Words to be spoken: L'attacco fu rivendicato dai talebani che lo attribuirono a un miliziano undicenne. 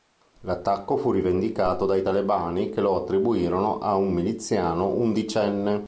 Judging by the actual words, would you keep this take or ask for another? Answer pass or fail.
pass